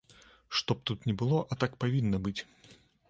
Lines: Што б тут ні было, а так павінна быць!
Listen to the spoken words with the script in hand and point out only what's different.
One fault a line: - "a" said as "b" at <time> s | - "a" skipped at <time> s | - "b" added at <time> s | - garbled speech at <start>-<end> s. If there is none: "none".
none